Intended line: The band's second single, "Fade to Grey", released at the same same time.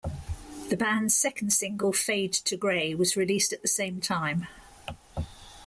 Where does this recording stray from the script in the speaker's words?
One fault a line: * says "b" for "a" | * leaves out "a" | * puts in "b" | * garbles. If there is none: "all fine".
* puts in "was"
* leaves out "same"